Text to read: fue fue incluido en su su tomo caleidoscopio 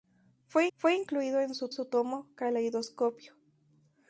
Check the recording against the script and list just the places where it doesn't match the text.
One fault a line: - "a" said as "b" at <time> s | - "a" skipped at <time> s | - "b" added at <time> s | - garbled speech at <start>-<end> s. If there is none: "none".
none